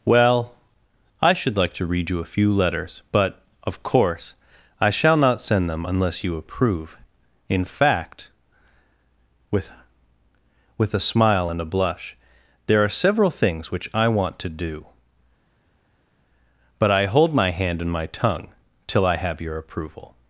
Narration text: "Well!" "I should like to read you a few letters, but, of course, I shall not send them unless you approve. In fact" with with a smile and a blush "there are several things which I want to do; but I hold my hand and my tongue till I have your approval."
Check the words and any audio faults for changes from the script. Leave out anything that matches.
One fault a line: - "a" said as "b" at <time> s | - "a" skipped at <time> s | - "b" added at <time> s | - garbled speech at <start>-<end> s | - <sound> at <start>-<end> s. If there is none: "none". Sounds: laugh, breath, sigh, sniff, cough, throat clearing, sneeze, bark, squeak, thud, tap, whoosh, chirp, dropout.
none